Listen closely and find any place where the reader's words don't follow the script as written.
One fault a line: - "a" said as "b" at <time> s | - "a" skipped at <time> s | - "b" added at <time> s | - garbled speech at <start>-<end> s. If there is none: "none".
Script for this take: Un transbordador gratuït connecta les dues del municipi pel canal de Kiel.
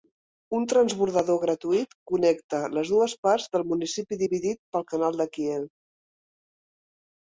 - "parts" added at 3.3 s
- "dividit" added at 4.2 s